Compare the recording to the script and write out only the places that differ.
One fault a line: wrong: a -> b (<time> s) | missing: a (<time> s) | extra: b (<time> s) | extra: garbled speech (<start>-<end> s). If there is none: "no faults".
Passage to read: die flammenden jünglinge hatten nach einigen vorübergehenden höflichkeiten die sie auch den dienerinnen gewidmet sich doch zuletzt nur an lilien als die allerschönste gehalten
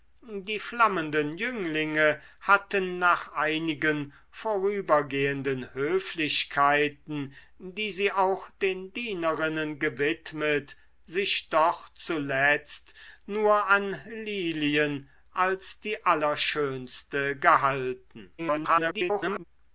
extra: garbled speech (18.4-19.4 s)